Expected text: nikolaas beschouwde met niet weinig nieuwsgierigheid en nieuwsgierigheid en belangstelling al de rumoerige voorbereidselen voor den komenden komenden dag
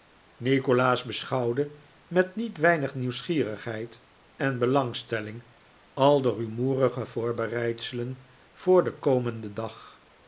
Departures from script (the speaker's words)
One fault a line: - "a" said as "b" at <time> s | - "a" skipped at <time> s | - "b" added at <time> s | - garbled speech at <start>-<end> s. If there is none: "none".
- "nieuwsgierigheid en" skipped at 4.6 s
- "komenden" skipped at 9.5 s